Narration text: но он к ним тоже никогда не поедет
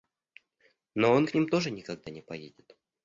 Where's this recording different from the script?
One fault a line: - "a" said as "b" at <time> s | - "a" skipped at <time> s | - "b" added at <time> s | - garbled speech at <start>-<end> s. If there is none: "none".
none